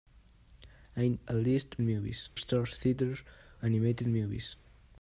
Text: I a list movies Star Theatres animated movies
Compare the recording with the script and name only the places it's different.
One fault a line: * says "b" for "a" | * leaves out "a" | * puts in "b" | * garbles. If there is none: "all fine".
all fine